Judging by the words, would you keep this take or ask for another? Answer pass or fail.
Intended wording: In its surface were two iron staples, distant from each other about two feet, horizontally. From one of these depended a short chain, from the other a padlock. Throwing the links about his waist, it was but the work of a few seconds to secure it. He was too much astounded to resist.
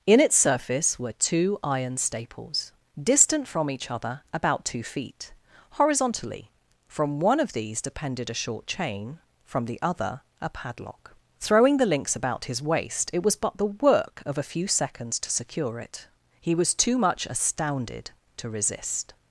pass